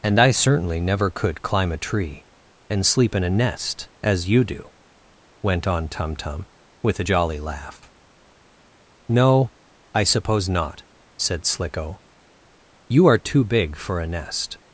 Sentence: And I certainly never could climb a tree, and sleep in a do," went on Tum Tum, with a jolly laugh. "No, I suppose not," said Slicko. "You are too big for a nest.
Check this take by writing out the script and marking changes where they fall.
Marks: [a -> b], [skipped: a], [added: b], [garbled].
And I certainly never could climb a tree, and sleep in a [added: nest as you] do," went on Tum Tum, with a jolly laugh. "No, I suppose not," said Slicko. "You are too big for a nest.